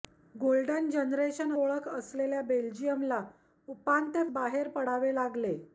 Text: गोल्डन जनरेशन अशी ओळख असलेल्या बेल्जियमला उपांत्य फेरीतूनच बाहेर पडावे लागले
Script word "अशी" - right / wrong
wrong